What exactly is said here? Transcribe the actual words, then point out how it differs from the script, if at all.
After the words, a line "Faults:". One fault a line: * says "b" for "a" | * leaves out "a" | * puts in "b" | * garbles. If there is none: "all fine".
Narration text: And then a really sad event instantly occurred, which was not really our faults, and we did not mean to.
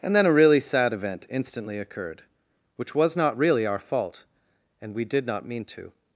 And then a really sad event instantly occurred, which was not really our fault, and we did not mean to.
Faults:
* says "fault" for "faults"